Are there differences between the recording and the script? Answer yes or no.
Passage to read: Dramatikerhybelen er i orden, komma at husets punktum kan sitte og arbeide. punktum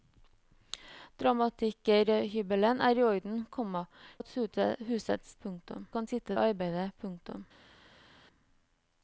no